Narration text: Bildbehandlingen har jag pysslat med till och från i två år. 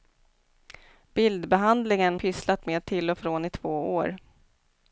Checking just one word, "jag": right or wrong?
wrong